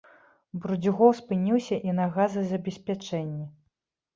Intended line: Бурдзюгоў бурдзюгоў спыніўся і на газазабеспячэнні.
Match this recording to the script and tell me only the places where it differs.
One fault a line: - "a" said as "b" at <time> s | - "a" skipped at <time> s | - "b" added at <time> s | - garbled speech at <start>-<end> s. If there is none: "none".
- "бурдзюгоў" skipped at 1.1 s